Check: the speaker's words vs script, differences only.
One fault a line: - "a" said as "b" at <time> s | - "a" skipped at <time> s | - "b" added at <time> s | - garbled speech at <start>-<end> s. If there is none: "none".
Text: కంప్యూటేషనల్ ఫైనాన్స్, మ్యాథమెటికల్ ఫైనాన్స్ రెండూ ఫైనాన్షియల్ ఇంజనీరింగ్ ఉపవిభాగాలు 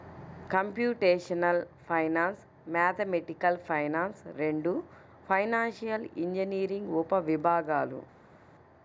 none